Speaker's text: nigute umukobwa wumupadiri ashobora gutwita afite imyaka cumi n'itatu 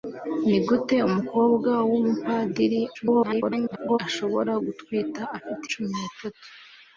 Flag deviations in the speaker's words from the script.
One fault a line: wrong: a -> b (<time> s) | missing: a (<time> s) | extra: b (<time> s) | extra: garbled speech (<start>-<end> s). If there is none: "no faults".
extra: garbled speech (2.9-4.0 s)
missing: imyaka (5.6 s)